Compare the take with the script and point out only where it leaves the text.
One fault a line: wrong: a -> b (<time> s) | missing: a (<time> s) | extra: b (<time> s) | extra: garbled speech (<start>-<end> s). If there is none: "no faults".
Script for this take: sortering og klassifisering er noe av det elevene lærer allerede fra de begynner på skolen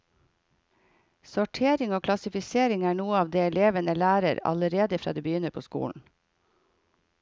no faults